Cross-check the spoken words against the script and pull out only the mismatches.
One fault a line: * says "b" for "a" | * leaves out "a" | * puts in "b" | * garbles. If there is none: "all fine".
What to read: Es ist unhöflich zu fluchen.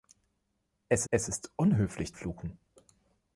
* puts in "es"
* leaves out "zu"